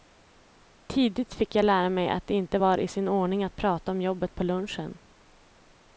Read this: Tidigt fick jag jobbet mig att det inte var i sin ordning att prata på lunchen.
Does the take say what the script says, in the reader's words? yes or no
no